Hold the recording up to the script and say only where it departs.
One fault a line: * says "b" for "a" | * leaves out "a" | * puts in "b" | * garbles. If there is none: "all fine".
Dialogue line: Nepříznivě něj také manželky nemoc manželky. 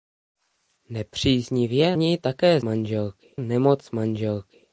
all fine